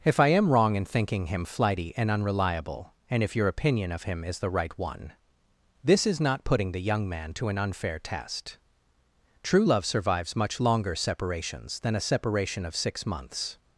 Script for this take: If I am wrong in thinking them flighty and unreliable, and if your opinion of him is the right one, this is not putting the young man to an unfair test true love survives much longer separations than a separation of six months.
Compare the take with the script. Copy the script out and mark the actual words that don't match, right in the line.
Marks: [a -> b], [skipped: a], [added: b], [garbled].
If I am wrong in thinking [them -> him] flighty and unreliable, and if your opinion of him is the right one, this is not putting the young man to an unfair test true love survives much longer separations than a separation of six months.